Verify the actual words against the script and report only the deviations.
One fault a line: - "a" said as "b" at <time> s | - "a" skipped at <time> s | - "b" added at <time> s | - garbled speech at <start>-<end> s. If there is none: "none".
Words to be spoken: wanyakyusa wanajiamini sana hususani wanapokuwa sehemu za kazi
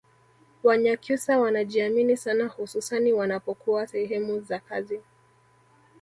none